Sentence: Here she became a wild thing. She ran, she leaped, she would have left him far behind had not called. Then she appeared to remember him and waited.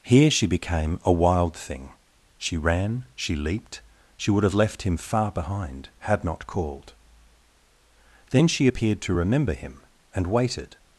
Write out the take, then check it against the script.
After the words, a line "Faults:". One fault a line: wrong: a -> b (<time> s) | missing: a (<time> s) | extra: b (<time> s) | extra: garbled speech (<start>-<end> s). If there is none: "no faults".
Here she became a wild thing. She ran, she leaped, she would have left him far behind had not called. Then she appeared to remember him and waited.
Faults:
no faults